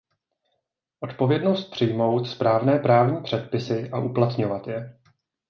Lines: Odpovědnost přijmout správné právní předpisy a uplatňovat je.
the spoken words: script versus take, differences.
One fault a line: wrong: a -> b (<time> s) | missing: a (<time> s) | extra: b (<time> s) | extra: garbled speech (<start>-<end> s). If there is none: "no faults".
no faults